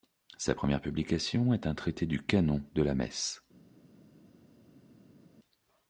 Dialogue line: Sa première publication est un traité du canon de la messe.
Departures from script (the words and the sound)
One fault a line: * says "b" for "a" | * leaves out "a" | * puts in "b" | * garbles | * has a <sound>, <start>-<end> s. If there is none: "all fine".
all fine